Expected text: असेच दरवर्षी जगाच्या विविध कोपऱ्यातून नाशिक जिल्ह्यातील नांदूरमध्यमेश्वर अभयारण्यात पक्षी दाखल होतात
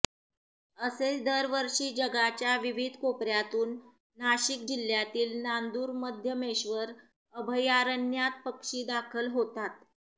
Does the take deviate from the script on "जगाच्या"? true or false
false